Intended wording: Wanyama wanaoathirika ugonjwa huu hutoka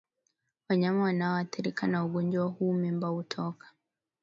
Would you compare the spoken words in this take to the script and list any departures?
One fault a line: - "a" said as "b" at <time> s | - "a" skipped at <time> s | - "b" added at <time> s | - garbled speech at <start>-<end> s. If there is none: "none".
- "na" added at 1.9 s
- "mimba" added at 2.7 s